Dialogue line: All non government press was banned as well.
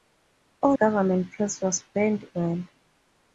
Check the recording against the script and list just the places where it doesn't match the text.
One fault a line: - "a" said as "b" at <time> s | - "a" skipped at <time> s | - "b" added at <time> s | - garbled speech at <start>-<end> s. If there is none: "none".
- "non" skipped at 0.8 s
- "as" skipped at 2.3 s